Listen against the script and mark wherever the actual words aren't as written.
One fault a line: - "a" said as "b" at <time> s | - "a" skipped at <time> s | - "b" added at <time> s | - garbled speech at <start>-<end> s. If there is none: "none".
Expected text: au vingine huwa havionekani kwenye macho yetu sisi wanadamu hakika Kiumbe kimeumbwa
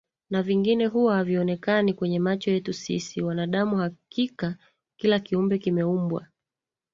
- "au" said as "na" at 0.3 s
- "kila" added at 5.0 s